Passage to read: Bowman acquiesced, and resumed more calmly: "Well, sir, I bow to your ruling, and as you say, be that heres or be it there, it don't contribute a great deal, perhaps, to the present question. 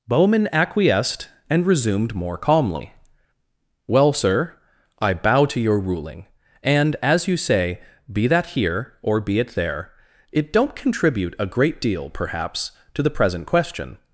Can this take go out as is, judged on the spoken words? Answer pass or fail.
fail